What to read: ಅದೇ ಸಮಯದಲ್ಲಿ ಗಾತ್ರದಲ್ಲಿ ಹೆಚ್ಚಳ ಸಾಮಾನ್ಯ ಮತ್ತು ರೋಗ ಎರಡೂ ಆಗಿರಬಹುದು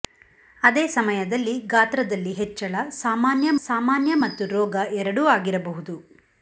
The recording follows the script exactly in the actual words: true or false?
false